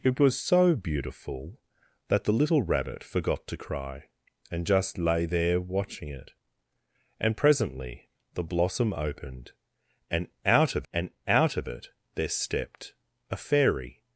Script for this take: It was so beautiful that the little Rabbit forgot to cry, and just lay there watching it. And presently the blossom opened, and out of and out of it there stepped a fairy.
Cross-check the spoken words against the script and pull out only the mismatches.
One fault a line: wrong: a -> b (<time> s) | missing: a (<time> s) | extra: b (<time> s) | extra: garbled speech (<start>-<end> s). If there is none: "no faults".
no faults